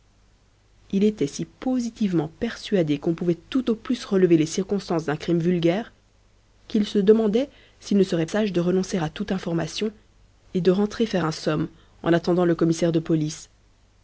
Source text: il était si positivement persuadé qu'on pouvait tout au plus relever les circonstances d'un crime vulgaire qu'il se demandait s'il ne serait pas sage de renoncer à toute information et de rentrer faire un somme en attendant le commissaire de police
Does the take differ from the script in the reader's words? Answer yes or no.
yes